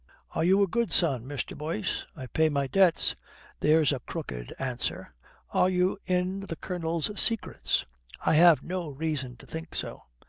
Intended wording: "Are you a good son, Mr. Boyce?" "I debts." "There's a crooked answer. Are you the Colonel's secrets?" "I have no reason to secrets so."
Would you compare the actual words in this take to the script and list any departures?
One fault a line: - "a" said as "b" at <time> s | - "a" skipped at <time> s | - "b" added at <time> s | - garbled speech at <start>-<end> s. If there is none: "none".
- "pay my" added at 2.2 s
- "in" added at 6.1 s
- "secrets" said as "think" at 9.5 s